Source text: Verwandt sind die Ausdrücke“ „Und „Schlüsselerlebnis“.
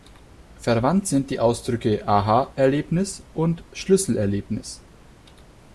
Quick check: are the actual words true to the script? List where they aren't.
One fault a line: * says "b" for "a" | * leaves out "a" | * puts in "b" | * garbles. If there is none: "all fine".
* puts in "Aha Erlebnis"